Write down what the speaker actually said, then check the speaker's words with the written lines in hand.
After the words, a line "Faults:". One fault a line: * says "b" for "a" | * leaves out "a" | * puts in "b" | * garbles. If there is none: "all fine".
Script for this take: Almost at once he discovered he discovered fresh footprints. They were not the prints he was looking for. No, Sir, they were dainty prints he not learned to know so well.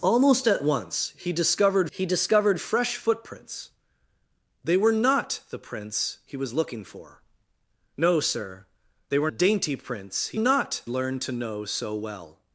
Almost at once he discovered he discovered fresh footprints. They were not the prints he was looking for. No, Sir, they were dainty prints he not learned to know so well.
Faults:
all fine